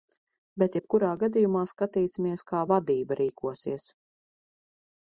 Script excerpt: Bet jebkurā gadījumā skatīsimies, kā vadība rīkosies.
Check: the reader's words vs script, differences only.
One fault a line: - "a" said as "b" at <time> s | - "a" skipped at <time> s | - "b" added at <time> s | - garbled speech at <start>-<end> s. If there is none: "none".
none